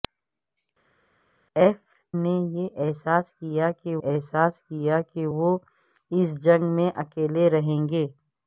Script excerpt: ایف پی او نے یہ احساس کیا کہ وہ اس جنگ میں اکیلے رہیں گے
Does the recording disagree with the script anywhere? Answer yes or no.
yes